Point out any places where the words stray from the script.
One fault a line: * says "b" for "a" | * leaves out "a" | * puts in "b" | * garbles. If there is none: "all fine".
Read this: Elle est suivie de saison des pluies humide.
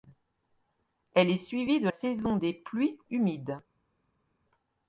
all fine